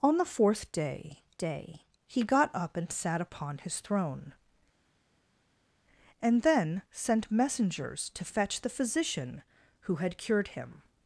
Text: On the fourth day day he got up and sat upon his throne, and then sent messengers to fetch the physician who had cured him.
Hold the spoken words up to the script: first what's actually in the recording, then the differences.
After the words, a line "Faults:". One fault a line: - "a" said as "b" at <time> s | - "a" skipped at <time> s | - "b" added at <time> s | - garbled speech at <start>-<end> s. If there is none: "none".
On the fourth day day he got up and sat upon his throne, and then sent messengers to fetch the physician who had cured him.
Faults:
none